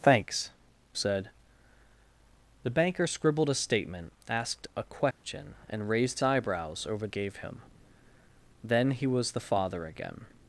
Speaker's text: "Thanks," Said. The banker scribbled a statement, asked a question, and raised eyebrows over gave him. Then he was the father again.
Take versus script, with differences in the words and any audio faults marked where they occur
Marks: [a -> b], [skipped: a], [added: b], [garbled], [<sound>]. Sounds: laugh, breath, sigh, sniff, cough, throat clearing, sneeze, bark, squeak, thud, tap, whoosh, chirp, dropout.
"Thanks," Said. The banker scribbled a statement, asked a question, [dropout] and raised eyebrows over gave him. Then he was the father again.